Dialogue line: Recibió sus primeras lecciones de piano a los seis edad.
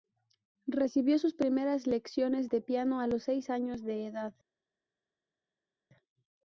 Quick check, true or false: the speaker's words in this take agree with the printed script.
false